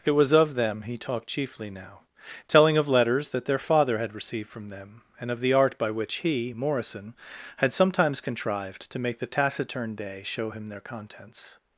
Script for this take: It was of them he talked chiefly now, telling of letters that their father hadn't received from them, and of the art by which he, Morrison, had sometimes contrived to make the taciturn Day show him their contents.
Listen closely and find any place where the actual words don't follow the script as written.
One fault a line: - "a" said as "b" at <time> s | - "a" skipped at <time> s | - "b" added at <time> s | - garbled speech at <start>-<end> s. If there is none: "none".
- "hadn't" said as "had" at 4.0 s